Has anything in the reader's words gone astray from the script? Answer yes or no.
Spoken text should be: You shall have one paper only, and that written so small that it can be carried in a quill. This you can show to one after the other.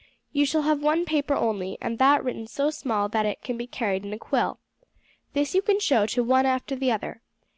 no